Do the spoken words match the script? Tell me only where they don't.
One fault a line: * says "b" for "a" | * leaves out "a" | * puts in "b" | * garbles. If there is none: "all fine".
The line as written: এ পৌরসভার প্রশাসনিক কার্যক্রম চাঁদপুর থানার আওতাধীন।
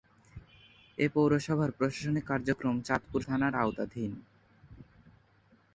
all fine